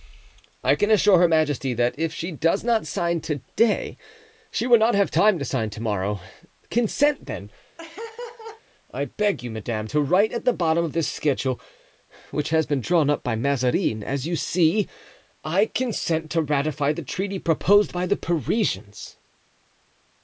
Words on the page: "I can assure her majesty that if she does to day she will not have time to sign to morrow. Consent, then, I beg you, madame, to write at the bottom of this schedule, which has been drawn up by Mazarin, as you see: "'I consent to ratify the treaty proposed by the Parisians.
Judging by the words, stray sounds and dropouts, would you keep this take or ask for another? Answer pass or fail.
fail